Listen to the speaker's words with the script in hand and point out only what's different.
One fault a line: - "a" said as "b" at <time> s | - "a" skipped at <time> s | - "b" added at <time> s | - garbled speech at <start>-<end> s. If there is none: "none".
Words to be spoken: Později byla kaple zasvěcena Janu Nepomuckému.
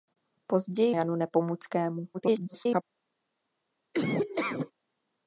- "byla kaple zasvěcena" skipped at 0.9 s
- garbled speech at 2.1-2.8 s